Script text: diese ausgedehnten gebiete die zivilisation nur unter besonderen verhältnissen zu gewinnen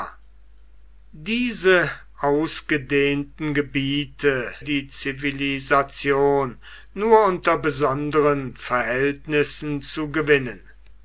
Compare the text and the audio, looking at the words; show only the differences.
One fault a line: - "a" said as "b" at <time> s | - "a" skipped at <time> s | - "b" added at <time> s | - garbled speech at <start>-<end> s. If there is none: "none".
none